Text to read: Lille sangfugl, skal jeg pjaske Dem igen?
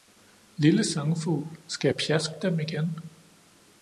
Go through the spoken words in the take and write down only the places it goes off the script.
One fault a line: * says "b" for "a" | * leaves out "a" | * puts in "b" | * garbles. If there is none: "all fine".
all fine